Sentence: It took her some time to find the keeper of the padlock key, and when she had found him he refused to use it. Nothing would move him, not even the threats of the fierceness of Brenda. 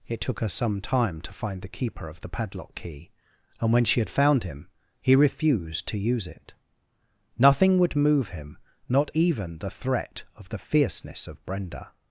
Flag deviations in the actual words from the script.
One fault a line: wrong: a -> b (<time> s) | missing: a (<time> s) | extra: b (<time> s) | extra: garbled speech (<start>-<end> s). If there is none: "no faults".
wrong: threats -> threat (9.7 s)